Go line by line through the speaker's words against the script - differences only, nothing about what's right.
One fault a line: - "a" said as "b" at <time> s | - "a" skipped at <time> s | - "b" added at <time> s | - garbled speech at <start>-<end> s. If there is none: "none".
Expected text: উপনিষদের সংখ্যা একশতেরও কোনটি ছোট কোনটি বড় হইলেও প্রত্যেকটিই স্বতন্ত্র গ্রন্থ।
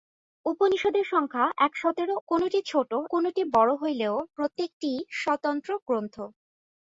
none